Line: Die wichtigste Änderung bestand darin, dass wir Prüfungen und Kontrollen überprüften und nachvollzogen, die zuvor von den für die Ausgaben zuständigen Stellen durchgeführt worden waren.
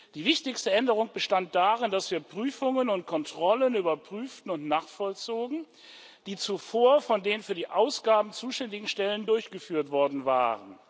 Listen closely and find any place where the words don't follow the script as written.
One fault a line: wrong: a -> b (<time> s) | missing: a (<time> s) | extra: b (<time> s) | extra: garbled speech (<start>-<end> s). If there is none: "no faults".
no faults